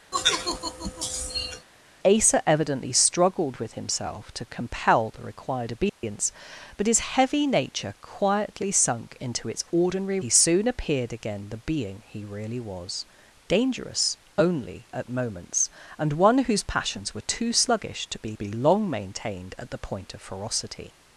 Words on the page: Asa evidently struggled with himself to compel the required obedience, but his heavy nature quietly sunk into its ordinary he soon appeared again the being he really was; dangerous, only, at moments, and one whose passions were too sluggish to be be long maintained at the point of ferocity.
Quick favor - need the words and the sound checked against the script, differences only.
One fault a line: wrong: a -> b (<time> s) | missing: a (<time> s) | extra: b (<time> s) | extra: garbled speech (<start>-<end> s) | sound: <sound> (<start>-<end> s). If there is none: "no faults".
sound: sigh (0.1-1.7 s)
sound: dropout (5.9-6.0 s)